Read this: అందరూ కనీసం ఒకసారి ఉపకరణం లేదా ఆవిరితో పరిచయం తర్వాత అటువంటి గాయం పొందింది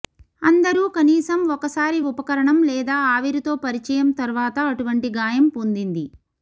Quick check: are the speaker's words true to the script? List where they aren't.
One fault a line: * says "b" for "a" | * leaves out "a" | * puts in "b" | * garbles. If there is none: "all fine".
all fine